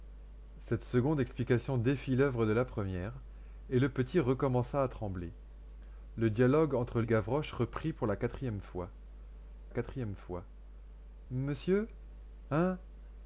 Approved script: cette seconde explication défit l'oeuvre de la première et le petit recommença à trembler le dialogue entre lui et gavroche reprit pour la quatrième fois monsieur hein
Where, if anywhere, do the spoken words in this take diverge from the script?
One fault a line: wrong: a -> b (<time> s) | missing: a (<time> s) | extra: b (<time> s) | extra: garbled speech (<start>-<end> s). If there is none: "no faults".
missing: lui (7.0 s)
extra: quatrième fois (9.7 s)